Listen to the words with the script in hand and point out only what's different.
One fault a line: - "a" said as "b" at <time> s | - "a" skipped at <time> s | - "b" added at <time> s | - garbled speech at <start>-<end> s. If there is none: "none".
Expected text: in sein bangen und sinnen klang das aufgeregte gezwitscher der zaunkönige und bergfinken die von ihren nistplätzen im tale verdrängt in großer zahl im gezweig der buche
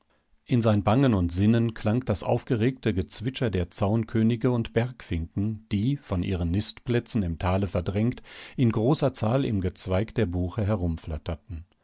none